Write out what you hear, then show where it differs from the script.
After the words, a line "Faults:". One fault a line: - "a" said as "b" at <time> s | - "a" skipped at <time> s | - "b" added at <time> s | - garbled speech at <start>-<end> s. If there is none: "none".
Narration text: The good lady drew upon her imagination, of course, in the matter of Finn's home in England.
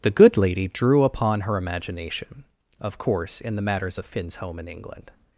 The good lady drew upon her imagination, of course, in the matters of Finn's home in England.
Faults:
- "matter" said as "matters" at 3.6 s